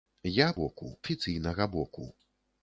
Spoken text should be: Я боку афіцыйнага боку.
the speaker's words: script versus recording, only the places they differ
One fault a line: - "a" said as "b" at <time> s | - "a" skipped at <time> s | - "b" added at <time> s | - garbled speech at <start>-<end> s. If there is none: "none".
none